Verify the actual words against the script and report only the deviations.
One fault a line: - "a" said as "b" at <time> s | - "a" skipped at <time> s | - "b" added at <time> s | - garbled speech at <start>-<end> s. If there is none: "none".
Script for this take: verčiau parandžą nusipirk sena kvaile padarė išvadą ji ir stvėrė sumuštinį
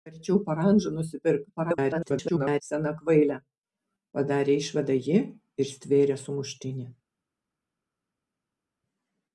- garbled speech at 1.6-2.6 s